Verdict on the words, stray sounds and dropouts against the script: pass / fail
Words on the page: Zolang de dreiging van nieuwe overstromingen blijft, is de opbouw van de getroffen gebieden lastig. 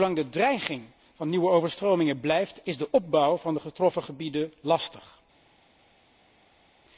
pass